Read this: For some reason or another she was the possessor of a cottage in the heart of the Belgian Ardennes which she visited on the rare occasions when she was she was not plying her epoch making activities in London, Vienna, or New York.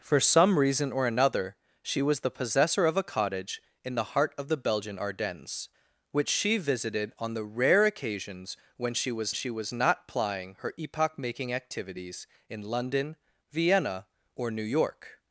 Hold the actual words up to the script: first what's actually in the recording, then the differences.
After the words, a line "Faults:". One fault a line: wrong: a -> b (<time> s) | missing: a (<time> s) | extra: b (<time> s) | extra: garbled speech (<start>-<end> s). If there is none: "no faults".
For some reason or another she was the possessor of a cottage in the heart of the Belgian Ardennes which she visited on the rare occasions when she was she was not plying her epoch making activities in London, Vienna, or New York.
Faults:
no faults